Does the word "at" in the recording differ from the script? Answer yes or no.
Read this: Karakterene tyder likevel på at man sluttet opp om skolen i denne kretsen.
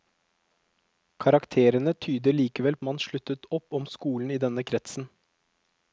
yes